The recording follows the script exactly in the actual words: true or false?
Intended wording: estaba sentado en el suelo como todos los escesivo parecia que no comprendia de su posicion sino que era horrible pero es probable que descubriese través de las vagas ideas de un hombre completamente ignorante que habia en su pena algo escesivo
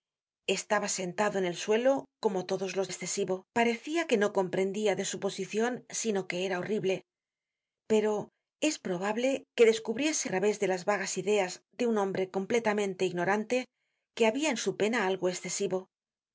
true